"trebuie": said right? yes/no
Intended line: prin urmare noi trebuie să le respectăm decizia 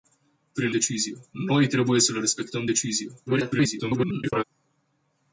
yes